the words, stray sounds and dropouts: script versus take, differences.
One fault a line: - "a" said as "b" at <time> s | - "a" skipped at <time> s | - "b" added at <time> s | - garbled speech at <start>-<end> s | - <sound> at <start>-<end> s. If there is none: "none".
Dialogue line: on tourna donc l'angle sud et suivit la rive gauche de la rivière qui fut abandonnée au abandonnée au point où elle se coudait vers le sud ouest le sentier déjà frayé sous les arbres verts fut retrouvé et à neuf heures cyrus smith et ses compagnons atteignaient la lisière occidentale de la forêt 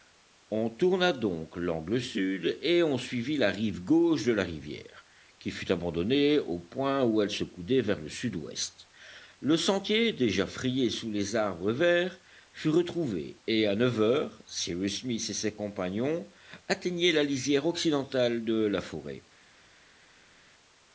- "on" added at 2.8 s
- "abandonnée au" skipped at 6.6 s